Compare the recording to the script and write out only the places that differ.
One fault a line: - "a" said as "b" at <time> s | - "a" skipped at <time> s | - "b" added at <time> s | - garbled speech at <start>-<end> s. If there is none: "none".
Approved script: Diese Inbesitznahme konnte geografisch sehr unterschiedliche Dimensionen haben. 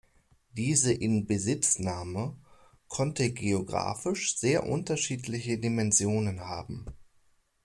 none